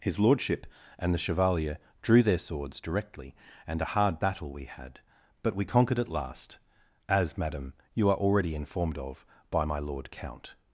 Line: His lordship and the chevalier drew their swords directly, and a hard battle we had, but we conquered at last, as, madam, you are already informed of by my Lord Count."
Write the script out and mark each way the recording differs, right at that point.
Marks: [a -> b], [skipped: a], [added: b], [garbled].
His lordship and the chevalier drew their swords directly, and a hard battle we had, but we conquered at last, as, madam, you are already informed of by my Lord Count."